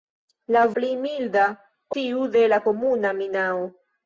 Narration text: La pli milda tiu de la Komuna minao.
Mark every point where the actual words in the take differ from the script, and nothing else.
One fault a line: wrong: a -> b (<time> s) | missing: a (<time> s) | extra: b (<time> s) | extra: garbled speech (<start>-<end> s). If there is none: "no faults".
no faults